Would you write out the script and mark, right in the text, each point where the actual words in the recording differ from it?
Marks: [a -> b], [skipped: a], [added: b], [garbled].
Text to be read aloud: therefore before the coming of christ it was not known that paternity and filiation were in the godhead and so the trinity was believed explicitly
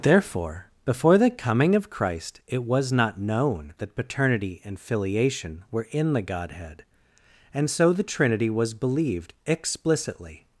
therefore before the coming of christ it was not known that paternity and filiation were in the godhead and so the trinity was believed explicitly